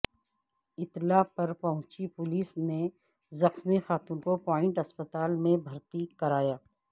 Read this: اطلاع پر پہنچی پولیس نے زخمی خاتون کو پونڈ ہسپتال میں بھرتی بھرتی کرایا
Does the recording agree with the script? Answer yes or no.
no